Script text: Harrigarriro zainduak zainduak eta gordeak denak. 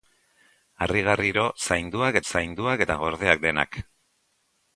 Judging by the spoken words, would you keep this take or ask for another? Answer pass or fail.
pass